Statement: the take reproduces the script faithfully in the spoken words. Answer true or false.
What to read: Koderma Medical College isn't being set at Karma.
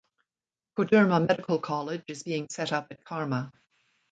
false